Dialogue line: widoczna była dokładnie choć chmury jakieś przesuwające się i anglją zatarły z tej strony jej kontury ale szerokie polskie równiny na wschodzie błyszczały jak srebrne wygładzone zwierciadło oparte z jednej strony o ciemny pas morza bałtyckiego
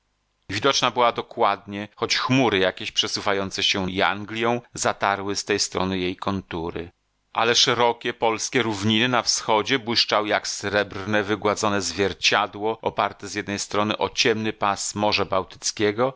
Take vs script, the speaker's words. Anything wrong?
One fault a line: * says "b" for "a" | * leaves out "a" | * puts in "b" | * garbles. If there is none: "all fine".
all fine